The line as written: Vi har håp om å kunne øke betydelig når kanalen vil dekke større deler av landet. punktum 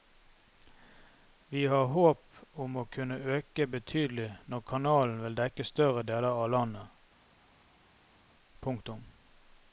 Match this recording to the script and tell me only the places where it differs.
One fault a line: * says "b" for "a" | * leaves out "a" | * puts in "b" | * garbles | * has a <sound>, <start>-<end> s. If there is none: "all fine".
all fine